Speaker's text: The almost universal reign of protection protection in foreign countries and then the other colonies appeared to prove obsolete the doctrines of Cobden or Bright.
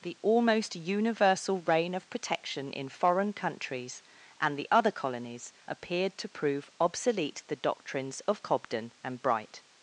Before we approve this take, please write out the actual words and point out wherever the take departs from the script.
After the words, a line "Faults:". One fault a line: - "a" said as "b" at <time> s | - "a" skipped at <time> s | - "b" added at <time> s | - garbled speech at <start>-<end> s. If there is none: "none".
The almost universal reign of protection in foreign countries and the other colonies appeared to prove obsolete the doctrines of Cobden and Bright.
Faults:
- "protection" skipped at 2.7 s
- "then" skipped at 4.6 s
- "or" said as "and" at 9.0 s